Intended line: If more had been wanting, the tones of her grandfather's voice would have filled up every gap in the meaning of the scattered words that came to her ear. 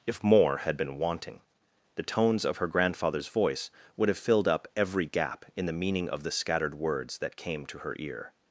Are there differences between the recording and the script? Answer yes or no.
no